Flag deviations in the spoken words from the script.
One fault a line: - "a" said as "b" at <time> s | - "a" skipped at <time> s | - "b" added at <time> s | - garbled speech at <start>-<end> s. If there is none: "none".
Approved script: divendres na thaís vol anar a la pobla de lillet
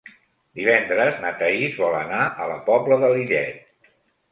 none